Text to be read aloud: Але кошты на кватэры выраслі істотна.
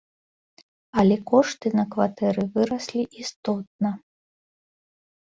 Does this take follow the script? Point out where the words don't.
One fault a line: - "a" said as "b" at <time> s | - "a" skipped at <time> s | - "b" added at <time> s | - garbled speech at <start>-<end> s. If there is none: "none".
none